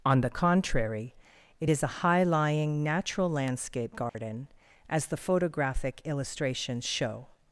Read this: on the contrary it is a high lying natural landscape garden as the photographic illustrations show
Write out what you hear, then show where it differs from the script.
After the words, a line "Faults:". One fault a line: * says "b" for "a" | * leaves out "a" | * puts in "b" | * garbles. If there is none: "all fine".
on the contrary it is a high lying natural landscape garden as the photographic illustrations show
Faults:
all fine